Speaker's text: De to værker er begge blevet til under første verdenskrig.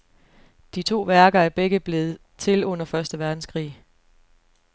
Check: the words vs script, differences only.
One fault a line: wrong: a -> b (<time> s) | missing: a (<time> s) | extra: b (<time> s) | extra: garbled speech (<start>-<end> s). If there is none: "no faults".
no faults